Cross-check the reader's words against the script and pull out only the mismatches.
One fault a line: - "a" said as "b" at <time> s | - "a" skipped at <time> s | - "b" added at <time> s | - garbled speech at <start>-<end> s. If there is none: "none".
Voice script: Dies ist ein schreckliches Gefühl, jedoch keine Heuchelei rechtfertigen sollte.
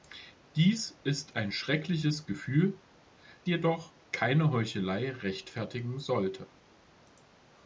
none